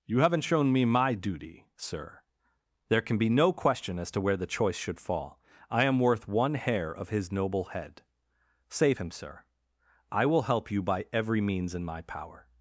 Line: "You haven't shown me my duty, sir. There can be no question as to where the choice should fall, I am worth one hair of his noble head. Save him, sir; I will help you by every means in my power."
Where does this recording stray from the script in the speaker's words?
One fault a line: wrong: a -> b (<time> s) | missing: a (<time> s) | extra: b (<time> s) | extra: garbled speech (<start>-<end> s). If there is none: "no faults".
no faults